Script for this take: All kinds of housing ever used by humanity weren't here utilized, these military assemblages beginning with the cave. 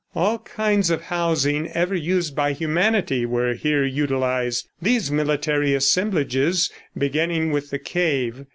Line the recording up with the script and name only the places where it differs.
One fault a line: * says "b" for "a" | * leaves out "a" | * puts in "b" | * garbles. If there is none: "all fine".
* says "were" for "weren't"